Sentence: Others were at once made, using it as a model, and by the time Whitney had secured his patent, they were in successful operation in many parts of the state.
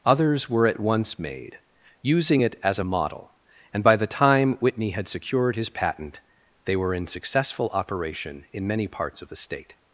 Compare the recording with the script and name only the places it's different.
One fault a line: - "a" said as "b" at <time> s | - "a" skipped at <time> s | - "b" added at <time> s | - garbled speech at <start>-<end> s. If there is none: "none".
none